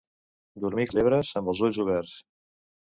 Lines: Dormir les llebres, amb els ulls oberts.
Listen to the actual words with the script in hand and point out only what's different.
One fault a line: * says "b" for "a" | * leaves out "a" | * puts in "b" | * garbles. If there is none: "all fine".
all fine